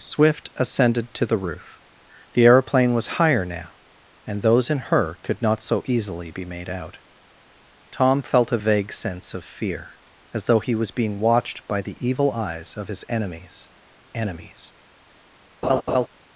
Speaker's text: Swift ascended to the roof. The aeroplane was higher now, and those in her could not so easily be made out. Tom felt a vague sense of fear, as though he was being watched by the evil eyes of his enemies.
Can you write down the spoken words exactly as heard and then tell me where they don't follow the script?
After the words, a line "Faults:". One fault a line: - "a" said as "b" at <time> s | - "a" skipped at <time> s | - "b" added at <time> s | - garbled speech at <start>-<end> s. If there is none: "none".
Swift ascended to the roof. The aeroplane was higher now, and those in her could not so easily be made out. Tom felt a vague sense of fear, as though he was being watched by the evil eyes of his enemies enemies.
Faults:
- "enemies" added at 14.1 s